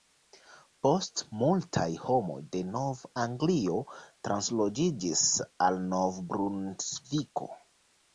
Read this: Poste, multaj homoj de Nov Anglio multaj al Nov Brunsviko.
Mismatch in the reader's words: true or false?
true